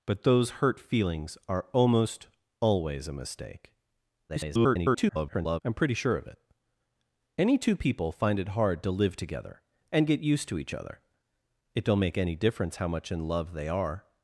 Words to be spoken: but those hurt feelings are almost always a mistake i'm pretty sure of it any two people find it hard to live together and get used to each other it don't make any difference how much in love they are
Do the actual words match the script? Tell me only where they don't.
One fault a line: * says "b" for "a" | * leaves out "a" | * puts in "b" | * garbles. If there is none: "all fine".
* garbles